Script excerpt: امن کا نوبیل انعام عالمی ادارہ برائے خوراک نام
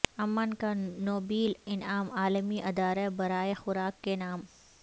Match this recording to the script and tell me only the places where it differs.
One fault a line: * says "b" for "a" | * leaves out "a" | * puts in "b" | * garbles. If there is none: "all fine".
* puts in "کے"